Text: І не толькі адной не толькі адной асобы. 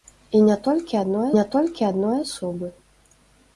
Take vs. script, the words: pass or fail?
pass